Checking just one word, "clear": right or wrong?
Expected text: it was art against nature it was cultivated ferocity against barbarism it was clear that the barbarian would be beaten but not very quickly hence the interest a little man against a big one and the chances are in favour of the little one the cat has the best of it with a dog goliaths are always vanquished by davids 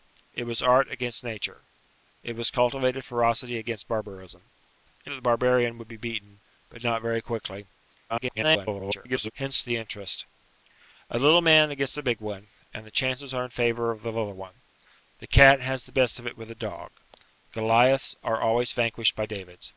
wrong